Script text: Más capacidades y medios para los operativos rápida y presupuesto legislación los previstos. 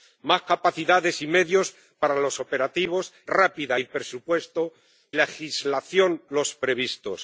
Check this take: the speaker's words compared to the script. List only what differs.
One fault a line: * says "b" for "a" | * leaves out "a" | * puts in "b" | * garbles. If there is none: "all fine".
all fine